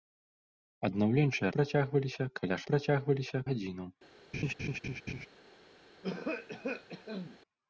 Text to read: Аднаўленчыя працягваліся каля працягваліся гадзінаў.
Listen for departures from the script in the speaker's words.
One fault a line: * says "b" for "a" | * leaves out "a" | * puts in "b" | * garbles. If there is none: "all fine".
all fine